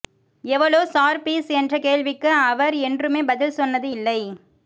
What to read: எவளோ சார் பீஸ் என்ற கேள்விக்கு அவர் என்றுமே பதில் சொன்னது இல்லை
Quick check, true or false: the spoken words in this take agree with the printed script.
true